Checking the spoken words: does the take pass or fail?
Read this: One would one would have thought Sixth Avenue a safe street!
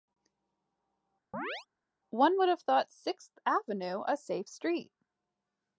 fail